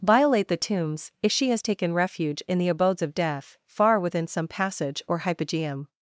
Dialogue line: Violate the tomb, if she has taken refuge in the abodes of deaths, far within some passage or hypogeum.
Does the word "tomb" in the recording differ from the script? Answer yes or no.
yes